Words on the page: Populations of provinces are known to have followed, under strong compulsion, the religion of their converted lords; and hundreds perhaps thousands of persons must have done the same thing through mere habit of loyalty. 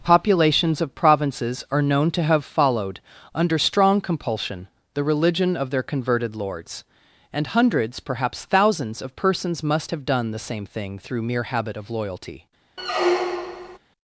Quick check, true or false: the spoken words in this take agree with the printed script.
true